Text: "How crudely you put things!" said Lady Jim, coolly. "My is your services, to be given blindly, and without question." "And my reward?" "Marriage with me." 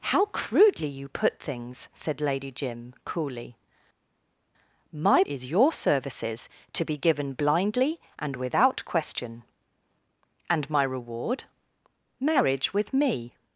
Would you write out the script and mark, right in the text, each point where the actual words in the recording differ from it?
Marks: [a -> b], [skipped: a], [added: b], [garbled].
"How crudely you put things!" said Lady Jim, coolly. "My is your services, to be given blindly, and without question." "And my reward?" "Marriage with me."